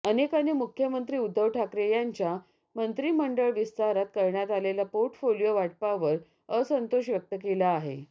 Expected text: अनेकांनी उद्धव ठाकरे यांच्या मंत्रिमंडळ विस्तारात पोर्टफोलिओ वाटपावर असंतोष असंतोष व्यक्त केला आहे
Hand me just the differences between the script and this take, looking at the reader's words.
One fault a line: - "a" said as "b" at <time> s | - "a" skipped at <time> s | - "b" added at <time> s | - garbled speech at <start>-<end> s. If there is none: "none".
- "मुख्यमंत्री" added at 0.5 s
- "करण्यात आलेल्या" added at 4.2 s
- "असंतोष" skipped at 7.1 s